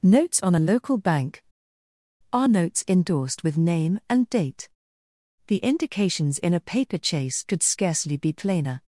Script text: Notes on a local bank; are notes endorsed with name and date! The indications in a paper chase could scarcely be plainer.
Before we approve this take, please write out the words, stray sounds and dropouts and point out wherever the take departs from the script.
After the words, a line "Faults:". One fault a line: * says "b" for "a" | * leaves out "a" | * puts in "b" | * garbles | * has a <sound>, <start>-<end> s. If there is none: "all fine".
Notes on a local bank; are notes endorsed with name and date! The indications in a paper chase could scarcely be plainer.
Faults:
all fine